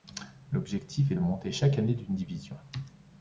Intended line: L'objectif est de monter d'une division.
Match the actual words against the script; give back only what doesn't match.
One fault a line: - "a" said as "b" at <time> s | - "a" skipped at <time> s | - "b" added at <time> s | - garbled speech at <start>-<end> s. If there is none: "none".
- "chaque année" added at 1.5 s